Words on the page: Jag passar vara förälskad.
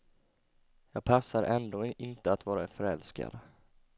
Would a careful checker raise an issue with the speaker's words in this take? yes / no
yes